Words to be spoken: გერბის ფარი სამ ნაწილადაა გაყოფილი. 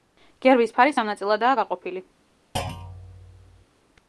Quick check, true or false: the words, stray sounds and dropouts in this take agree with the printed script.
false